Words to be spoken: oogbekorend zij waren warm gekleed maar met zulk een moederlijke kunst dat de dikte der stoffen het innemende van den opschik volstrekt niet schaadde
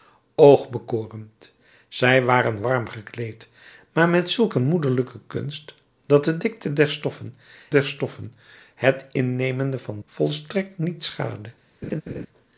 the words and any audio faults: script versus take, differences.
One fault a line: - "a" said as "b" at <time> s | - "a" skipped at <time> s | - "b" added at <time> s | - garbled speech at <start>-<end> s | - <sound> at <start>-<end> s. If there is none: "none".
- "der stoffen" added at 7.7 s
- "den opschik" skipped at 10.0 s
- laugh at 11.8-12.3 s